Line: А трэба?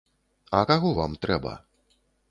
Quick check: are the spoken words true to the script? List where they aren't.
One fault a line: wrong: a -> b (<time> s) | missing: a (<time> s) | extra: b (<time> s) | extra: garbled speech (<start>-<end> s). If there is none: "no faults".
extra: каго вам (0.7 s)